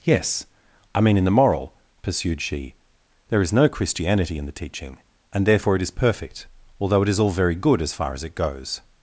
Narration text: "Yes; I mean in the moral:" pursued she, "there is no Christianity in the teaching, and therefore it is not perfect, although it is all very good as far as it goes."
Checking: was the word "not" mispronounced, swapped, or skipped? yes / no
yes